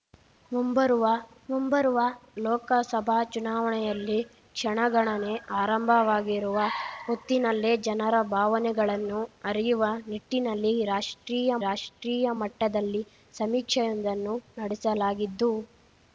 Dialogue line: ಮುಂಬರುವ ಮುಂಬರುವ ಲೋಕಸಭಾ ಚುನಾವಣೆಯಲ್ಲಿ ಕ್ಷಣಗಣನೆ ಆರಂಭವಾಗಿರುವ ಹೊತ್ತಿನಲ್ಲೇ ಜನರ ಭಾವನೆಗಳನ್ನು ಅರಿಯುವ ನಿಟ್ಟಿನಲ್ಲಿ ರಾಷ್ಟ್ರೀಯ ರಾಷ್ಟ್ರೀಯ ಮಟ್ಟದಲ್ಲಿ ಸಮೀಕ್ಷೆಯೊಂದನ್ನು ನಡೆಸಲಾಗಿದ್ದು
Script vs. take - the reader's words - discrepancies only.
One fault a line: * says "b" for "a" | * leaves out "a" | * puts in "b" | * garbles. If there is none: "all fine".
all fine